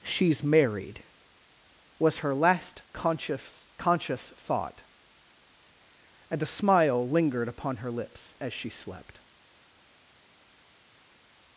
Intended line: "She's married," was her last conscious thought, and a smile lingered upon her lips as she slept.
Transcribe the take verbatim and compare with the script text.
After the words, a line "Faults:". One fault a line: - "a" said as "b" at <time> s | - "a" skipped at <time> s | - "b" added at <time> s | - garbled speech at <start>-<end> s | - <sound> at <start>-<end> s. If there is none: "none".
"She's married," was her last conscious conscious thought, and a smile lingered upon her lips as she slept.
Faults:
- "conscious" added at 3.8 s